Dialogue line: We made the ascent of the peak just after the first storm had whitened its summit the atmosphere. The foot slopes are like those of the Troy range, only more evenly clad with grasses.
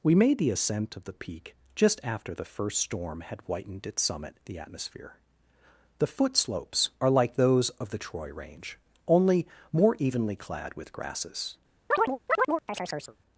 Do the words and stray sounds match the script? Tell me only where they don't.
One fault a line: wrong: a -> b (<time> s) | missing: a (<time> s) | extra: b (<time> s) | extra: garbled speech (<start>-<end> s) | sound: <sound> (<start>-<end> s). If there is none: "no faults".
sound: chirp (11.9-13.2 s)